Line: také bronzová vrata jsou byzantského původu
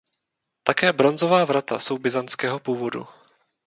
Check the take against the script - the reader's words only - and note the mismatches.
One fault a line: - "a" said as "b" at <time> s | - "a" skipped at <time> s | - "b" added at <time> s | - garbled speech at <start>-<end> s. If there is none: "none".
none